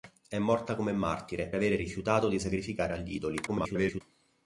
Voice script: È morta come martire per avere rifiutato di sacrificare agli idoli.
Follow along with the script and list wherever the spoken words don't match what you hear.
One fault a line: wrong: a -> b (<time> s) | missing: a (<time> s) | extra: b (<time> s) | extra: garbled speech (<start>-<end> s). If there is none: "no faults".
missing: per (1.5 s)
extra: garbled speech (3.5-4.0 s)